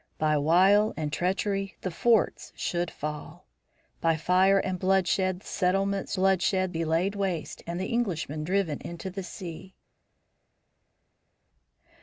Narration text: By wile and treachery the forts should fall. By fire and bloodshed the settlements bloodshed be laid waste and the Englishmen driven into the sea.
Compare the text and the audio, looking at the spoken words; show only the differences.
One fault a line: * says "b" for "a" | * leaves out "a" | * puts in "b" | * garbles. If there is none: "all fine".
all fine